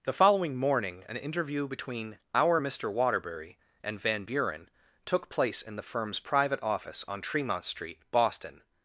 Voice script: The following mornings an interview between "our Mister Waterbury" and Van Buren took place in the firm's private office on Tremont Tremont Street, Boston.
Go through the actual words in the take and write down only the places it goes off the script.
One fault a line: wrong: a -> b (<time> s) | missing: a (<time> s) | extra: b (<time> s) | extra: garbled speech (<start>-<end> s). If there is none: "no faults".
wrong: mornings -> morning (0.6 s)
missing: Tremont (7.6 s)